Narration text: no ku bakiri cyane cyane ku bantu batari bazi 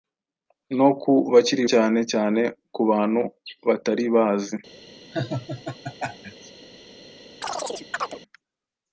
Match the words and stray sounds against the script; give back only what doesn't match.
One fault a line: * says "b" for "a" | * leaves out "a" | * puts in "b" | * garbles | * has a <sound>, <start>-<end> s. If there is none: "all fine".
* has a laugh, 5.1-6.5 s
* has a chirp, 7.4-8.2 s